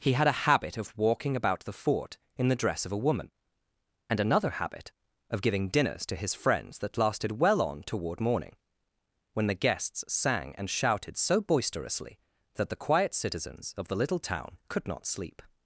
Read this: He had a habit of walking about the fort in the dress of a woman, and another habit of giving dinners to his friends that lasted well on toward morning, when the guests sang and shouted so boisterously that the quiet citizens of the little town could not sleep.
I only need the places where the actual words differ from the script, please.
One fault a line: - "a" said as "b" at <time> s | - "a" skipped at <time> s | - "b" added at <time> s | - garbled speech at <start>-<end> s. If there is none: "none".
none